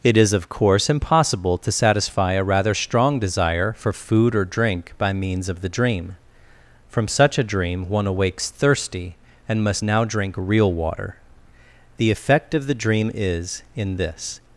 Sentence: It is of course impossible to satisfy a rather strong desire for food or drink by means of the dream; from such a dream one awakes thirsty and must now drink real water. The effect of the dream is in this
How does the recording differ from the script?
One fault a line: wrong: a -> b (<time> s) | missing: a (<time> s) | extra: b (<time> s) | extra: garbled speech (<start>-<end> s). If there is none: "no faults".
no faults